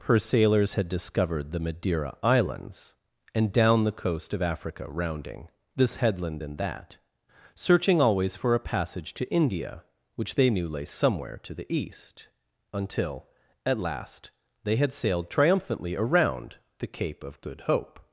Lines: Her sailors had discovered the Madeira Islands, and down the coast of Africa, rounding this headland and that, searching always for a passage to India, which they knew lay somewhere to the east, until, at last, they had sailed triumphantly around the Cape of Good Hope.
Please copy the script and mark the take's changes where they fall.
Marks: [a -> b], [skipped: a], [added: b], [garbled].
Her sailors had discovered the Madeira Islands, and down the coast of Africa, rounding this headland and that, searching always for a passage to India, which they knew lay somewhere to the east, until, at last, they had sailed triumphantly around the Cape of Good Hope.